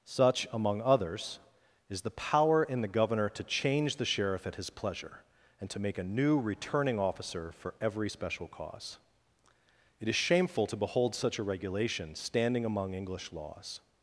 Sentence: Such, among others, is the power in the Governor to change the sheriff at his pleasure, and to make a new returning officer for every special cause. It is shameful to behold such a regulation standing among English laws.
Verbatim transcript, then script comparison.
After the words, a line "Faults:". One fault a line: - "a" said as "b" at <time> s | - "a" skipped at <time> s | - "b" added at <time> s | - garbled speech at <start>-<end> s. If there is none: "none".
Such, among others, is the power in the Governor to change the sheriff at his pleasure, and to make a new returning officer for every special cause. It is shameful to behold such a regulation standing among English laws.
Faults:
none